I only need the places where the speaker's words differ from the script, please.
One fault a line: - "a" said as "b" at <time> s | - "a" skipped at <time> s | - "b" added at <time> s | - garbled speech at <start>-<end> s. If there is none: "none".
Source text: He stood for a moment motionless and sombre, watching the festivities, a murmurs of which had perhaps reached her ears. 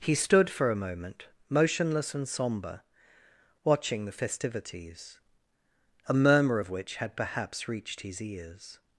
- "murmurs" said as "murmur" at 6.1 s
- "her" said as "his" at 8.0 s